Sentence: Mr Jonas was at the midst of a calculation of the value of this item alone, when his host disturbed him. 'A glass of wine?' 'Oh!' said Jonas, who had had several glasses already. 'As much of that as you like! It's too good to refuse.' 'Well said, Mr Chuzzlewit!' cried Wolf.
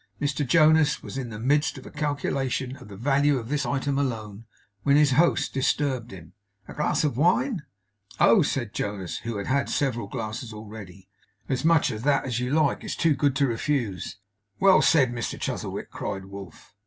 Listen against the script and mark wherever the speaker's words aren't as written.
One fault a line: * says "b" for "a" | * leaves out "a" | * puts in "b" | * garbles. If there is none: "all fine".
* says "in" for "at"